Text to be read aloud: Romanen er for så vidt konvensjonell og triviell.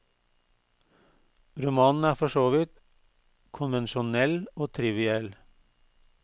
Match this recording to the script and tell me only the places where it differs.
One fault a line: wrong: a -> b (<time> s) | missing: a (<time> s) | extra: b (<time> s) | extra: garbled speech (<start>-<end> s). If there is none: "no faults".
no faults